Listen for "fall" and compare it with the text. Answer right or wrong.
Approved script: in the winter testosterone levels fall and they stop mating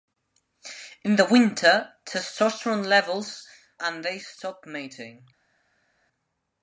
wrong